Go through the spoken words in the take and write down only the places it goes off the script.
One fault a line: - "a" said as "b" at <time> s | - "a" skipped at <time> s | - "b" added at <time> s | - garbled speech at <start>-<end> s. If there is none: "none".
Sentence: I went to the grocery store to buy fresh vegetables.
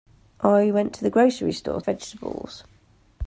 - "to buy fresh" skipped at 1.8 s